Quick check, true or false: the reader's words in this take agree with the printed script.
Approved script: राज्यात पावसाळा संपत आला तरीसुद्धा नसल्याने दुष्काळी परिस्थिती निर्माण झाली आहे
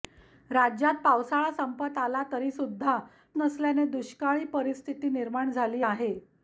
true